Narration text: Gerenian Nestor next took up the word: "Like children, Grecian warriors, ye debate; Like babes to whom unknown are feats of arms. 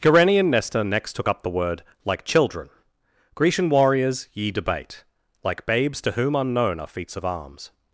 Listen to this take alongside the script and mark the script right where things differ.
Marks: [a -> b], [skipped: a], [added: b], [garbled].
Gerenian Nestor next took up the word: "Like children, Grecian warriors, ye debate; Like babes to whom unknown are feats of arms.